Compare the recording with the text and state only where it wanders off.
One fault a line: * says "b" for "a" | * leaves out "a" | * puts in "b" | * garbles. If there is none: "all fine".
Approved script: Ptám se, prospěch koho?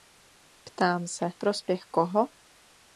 all fine